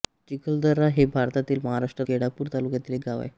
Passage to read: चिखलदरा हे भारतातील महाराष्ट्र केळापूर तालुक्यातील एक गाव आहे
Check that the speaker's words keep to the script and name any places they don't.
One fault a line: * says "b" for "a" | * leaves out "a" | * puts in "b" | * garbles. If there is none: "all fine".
all fine